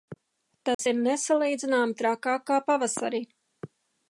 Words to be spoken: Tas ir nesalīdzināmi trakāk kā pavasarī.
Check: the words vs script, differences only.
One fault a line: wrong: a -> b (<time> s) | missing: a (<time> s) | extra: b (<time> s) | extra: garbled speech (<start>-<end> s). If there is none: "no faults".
no faults